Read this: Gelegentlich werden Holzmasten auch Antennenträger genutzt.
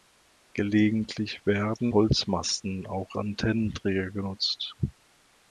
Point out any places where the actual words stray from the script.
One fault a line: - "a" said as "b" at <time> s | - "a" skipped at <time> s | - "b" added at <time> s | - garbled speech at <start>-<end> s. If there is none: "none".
none